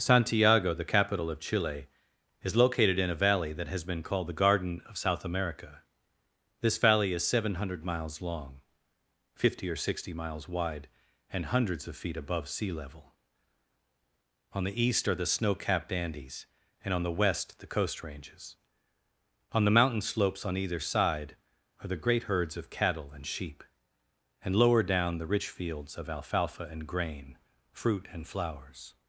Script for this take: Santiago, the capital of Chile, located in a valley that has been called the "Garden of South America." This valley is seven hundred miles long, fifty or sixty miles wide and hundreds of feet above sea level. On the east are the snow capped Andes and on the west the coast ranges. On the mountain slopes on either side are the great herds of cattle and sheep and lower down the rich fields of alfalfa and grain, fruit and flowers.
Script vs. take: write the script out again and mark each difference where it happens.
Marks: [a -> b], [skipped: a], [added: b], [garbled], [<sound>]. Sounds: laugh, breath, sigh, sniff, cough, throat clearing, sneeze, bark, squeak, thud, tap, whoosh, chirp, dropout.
Santiago, the capital of Chile, [added: is] located in a valley that has been called the "Garden of South America." This valley is seven hundred miles long, fifty or sixty miles wide and hundreds of feet above sea level. On the east are the snow capped Andes and on the west the coast ranges. On the mountain slopes on either side are the great herds of cattle and sheep and lower down the rich fields of alfalfa and grain, fruit and flowers.